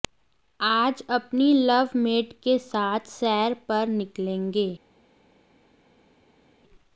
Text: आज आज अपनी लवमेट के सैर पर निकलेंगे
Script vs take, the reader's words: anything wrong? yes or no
yes